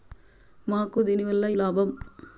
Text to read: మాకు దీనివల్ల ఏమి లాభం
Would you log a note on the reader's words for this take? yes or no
yes